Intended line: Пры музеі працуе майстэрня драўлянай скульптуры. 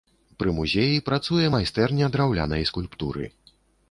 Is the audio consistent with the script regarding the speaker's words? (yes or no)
yes